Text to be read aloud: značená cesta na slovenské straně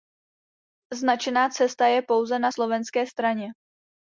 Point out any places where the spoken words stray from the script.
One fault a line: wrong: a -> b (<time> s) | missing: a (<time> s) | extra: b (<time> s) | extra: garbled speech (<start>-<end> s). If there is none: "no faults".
extra: je pouze (1.9 s)